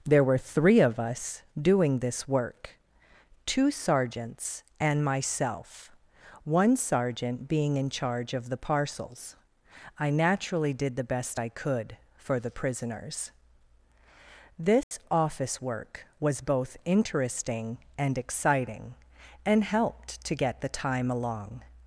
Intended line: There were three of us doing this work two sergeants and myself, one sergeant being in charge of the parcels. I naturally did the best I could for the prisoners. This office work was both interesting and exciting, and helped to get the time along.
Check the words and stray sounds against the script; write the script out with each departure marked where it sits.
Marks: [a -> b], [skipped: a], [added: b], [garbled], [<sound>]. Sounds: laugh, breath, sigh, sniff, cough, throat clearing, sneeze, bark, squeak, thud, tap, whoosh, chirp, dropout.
There were three of us doing this work two sergeants and myself, one sergeant being in charge of the parcels. I naturally did the best I could for the prisoners. This [dropout] office work was both interesting and exciting, and helped to get the time along.